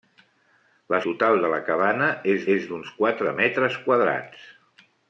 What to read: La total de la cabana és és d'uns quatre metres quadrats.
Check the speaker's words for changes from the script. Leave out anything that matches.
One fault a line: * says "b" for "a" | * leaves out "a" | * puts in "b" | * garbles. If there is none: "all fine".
all fine